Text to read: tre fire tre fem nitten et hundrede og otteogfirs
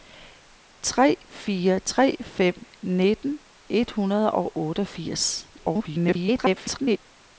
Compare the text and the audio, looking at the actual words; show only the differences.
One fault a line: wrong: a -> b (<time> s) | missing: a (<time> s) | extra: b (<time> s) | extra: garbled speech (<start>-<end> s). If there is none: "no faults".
extra: garbled speech (5.5-7.0 s)